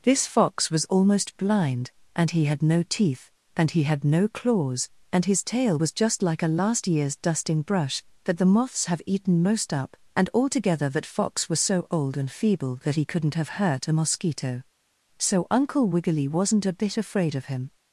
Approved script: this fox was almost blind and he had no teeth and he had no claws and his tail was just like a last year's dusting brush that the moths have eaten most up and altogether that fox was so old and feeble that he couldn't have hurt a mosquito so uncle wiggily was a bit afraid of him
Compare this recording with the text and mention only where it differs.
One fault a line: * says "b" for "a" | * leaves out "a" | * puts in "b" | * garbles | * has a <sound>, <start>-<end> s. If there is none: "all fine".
* says "wasn't" for "was"